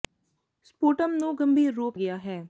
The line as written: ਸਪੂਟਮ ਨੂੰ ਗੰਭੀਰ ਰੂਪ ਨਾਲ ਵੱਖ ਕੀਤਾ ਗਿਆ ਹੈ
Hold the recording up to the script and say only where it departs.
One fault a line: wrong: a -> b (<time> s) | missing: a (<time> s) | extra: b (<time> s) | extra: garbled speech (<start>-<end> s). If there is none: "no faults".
missing: ਨਾਲ ਵੱਖ ਕੀਤਾ (2.0 s)